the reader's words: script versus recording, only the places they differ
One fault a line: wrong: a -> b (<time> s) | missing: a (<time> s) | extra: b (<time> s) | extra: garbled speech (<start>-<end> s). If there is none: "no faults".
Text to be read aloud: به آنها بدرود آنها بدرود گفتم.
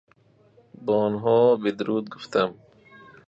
missing: آنها بدرود (2.1 s)